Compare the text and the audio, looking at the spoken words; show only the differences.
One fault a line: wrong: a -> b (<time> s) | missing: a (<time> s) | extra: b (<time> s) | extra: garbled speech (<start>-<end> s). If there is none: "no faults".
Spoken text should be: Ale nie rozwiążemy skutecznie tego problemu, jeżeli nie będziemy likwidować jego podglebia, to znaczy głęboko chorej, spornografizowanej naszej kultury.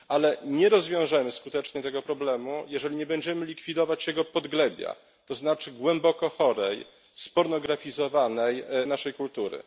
no faults